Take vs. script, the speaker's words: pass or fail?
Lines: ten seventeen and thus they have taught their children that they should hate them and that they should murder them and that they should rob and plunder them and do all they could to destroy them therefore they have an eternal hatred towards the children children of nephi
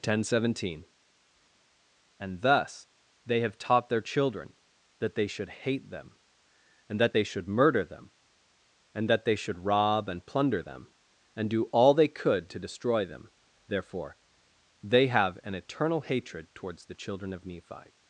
fail